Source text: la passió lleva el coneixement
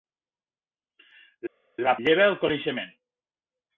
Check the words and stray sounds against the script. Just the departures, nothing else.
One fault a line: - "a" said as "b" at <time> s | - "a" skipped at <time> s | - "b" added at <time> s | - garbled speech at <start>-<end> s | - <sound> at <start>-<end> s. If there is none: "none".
- "passió" skipped at 1.9 s